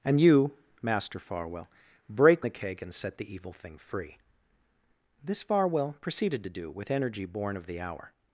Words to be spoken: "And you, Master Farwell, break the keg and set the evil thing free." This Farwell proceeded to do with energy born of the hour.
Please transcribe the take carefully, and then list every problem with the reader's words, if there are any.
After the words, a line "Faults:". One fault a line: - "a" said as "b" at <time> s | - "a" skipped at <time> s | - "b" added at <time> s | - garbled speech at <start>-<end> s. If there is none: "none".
"And you, Master Farwell, break the keg and set the evil thing free." This Farwell proceeded to do with energy born of the hour.
Faults:
none